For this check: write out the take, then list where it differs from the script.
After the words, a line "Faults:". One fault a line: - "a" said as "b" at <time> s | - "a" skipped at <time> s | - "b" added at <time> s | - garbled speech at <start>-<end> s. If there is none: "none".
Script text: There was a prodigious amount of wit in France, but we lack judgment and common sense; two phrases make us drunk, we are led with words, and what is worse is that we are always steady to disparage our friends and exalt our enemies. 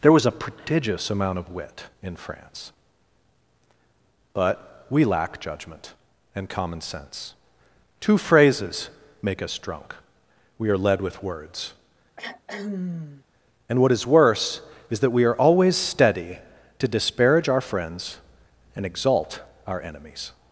There was a prodigious amount of wit in France, but we lack judgment and common sense; two phrases make us drunk, we are led with words, and what is worse is that we are always steady to disparage our friends and exalt our enemies.
Faults:
none